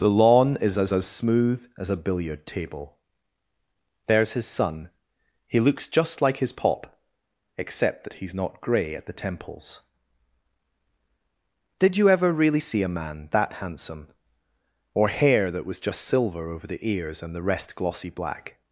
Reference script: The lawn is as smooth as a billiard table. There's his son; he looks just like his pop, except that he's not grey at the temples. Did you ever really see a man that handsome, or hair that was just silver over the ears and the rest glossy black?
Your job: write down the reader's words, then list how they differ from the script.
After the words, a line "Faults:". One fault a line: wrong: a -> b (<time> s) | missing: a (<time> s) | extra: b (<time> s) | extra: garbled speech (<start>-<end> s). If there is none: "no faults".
The lawn is as as smooth as a billiard table. There's his son; he looks just like his pop, except that he's not grey at the temples. Did you ever really see a man that handsome, or hair that was just silver over the ears and the rest glossy black?
Faults:
extra: as (0.9 s)